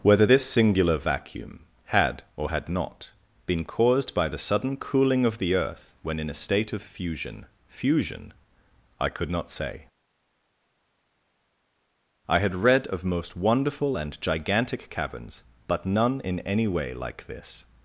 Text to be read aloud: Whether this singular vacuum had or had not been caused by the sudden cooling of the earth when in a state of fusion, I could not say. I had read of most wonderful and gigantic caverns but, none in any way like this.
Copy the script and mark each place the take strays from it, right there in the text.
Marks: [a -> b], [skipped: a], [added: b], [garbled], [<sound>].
Whether this singular vacuum had or had not been caused by the sudden cooling of the earth when in a state of fusion, [added: fusion] I could not say. I had read of most wonderful and gigantic caverns but, none in any way like this.